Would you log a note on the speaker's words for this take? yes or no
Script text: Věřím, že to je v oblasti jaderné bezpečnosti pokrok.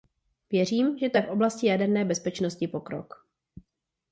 no